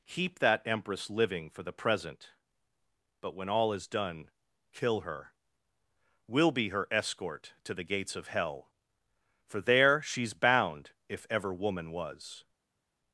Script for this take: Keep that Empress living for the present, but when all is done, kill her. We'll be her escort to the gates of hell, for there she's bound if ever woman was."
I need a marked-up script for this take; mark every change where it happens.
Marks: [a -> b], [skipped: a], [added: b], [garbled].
Keep that Empress living for the present, but when all is done, kill her. We'll be her escort to the gates of hell, for there she's bound if ever woman was."